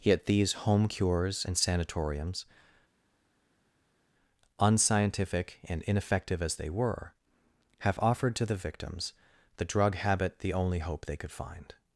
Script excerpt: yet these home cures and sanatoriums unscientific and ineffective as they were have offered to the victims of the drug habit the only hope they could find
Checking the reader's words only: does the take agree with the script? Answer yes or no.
no